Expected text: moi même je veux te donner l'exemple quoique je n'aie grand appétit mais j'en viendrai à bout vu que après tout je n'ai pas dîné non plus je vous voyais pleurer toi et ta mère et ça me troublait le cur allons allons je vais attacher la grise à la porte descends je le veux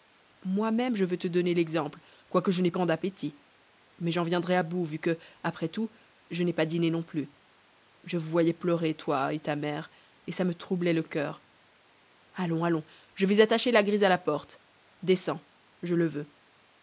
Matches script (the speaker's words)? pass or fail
pass